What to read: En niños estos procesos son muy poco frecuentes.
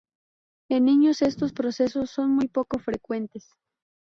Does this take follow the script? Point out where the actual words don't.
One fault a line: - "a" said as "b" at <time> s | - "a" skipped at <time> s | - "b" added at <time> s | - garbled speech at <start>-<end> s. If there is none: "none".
none